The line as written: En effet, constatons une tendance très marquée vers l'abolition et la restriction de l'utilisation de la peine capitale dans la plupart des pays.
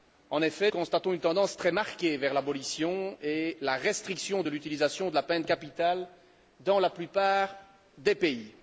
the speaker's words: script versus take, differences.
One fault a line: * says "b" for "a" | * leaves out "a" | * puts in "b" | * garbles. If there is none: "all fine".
all fine